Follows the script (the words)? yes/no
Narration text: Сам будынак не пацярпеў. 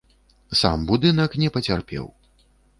yes